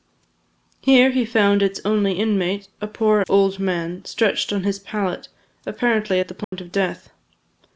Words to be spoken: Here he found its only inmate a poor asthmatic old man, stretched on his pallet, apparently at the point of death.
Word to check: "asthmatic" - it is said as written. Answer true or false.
false